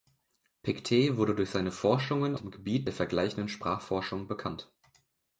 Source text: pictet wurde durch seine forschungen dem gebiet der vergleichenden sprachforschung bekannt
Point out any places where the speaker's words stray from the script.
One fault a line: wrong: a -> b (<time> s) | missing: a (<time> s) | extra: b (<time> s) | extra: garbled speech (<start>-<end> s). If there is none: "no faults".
no faults